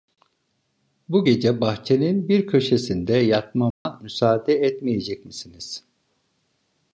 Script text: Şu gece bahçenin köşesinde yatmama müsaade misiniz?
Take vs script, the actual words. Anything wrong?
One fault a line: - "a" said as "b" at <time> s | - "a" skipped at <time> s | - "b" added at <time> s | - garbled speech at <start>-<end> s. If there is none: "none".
- "Şu" said as "Bu" at 1.1 s
- "bir" added at 2.3 s
- "etmeyecek" added at 4.5 s